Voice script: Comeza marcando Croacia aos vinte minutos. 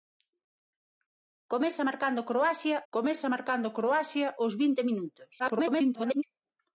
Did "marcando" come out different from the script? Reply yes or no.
no